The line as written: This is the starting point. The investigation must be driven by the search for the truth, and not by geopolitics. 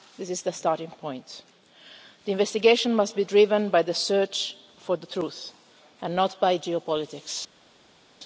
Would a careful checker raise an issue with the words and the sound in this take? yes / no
no